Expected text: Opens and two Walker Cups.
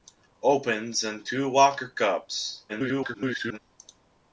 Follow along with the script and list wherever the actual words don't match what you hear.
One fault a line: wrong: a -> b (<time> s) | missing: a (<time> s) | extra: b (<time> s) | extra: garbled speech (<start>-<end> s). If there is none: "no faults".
extra: garbled speech (2.7-3.6 s)